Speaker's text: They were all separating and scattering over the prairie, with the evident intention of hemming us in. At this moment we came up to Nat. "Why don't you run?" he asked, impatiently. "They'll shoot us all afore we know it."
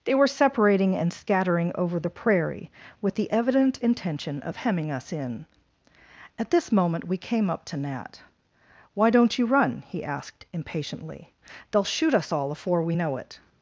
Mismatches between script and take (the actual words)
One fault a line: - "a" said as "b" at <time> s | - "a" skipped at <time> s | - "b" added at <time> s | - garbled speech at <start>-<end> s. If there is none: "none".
- "all" skipped at 0.3 s